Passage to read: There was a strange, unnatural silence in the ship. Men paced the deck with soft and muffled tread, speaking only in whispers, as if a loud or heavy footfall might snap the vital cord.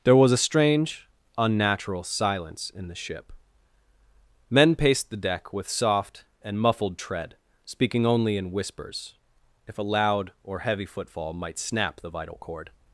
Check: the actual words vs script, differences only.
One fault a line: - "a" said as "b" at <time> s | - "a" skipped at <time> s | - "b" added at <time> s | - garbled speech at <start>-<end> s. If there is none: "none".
- "as" skipped at 9.1 s